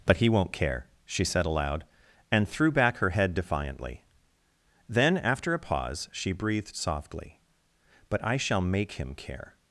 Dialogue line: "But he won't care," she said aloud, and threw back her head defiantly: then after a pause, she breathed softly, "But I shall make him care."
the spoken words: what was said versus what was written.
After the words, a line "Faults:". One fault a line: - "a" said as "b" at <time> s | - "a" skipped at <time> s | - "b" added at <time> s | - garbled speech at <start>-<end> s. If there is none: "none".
"But he won't care," she said aloud, and threw back her head defiantly: then after a pause, she breathed softly, "But I shall make him care."
Faults:
none